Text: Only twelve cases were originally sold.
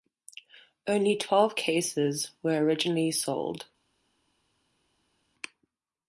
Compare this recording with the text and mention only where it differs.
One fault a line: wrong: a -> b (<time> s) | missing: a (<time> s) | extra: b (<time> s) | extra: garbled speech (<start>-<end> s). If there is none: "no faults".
no faults